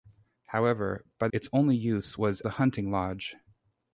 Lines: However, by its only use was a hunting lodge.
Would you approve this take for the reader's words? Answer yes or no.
yes